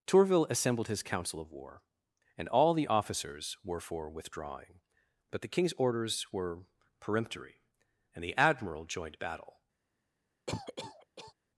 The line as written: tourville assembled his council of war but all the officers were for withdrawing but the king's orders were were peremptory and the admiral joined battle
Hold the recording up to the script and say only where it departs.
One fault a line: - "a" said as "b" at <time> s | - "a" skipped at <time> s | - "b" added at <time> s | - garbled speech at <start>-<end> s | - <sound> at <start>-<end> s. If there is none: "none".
- "but" said as "and" at 2.4 s
- "were" skipped at 6.6 s
- cough at 10.5-11.3 s